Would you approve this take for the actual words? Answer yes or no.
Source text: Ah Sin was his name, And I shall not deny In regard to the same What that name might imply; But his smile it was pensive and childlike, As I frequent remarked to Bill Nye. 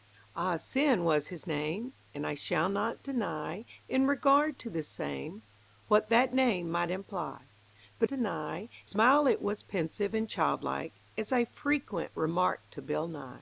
no